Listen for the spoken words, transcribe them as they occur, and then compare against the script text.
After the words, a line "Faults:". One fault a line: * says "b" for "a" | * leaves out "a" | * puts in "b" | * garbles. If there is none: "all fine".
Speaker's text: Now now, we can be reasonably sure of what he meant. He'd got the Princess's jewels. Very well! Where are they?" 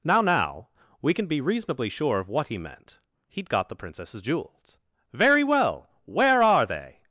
Now now, we can be reasonably sure of what he meant. He'd got the Princess's jewels. Very well! Where are they?"
Faults:
all fine